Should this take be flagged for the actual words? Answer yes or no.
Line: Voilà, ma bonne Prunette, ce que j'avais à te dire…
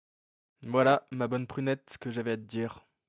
no